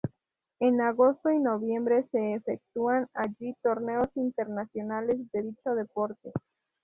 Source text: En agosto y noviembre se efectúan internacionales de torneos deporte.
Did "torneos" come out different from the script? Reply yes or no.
yes